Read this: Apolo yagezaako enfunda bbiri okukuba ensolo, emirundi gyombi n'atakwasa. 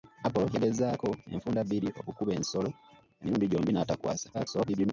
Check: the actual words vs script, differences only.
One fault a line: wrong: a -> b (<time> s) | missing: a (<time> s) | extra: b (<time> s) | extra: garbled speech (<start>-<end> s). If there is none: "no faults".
extra: garbled speech (4.3-4.9 s)